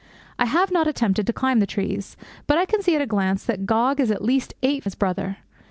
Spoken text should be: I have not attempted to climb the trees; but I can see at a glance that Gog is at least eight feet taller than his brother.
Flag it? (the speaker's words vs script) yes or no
yes